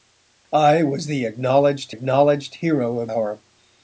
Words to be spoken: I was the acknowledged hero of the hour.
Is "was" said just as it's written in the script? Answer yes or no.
yes